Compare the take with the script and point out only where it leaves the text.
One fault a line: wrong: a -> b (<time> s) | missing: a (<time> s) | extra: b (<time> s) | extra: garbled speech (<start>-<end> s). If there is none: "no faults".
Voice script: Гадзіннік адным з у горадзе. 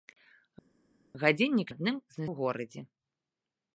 no faults